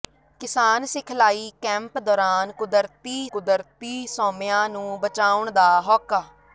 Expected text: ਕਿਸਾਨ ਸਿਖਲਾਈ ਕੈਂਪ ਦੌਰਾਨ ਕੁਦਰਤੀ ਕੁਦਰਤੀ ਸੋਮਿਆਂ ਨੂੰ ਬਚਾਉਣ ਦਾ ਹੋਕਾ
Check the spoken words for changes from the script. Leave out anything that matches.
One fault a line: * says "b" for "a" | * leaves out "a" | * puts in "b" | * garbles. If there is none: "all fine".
all fine